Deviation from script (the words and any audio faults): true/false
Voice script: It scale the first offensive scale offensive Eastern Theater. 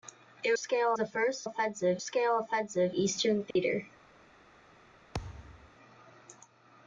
true